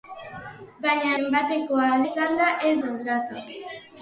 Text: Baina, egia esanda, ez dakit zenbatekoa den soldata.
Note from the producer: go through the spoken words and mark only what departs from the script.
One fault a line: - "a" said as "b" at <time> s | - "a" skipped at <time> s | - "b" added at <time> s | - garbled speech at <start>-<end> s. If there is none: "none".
- "egia" said as "zenbatekoa" at 1.2 s
- "dakit zenbatekoa den" skipped at 2.7 s